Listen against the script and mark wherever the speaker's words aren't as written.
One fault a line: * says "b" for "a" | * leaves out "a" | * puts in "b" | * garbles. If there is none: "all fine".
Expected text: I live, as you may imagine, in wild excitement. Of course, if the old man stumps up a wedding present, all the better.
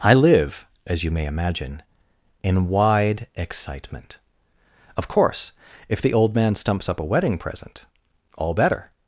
* says "wide" for "wild"
* leaves out "the"